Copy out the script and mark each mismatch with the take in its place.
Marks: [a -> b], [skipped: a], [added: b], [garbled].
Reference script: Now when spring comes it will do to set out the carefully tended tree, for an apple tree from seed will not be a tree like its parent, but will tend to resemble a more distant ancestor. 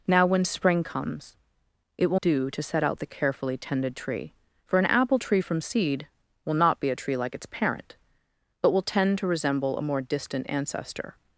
Now when spring comes it will do to set out the carefully tended tree, for an apple tree from seed will not be a tree like its parent, but will tend to resemble a more distant ancestor.